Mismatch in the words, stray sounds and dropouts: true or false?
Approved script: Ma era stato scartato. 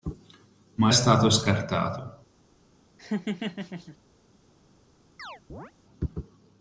true